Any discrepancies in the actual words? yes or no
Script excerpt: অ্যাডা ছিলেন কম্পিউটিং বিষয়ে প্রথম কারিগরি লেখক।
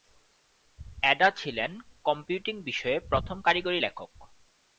no